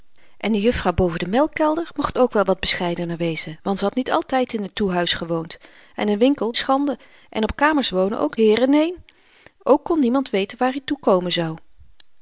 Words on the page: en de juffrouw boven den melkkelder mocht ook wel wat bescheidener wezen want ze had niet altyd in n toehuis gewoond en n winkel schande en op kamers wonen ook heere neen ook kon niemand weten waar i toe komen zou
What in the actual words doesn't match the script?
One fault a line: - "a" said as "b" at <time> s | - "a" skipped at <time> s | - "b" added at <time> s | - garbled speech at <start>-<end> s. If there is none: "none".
none